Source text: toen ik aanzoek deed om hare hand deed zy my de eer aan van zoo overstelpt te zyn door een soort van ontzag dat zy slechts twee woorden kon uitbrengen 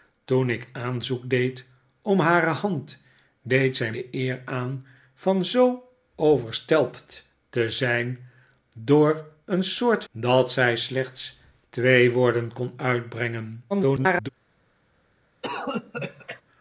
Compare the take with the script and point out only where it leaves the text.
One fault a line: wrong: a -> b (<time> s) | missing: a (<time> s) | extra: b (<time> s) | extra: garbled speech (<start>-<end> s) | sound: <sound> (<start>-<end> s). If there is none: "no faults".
missing: my (3.9 s)
missing: van ontzag (10.0 s)
extra: garbled speech (13.7-14.3 s)
sound: cough (15.4-16.4 s)